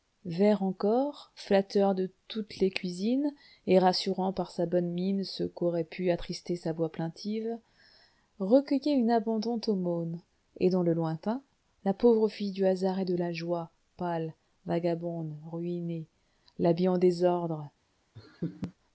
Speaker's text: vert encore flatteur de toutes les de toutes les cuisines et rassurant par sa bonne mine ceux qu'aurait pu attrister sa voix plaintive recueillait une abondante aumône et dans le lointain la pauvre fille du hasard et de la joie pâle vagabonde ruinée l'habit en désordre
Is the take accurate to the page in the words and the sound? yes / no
no